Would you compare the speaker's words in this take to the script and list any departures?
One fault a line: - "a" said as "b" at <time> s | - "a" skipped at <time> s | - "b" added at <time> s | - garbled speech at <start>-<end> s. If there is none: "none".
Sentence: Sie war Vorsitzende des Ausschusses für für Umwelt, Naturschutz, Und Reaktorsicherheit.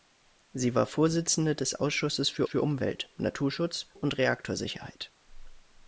none